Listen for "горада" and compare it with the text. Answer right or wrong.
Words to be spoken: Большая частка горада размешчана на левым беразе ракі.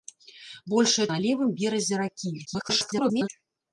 wrong